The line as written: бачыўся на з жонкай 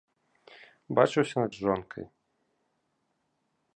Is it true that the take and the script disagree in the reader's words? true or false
false